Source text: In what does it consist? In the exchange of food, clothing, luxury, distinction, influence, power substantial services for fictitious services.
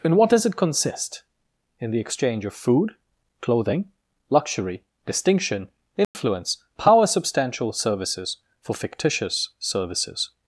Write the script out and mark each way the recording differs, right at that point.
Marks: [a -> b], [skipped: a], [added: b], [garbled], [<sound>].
In what does it consist? In the exchange of food, clothing, luxury, distinction, influence, [dropout] power substantial services for fictitious services.